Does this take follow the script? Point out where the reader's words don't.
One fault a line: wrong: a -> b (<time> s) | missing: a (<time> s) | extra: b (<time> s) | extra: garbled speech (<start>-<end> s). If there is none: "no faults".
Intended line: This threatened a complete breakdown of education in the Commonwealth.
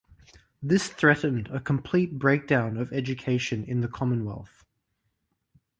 no faults